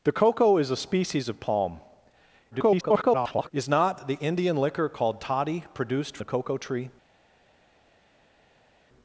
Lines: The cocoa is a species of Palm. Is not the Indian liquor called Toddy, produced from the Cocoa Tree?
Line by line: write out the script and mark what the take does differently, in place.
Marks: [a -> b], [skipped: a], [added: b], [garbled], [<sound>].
The cocoa is a species of Palm. [garbled] Is not the Indian liquor called Toddy, produced [skipped: from] the Cocoa Tree?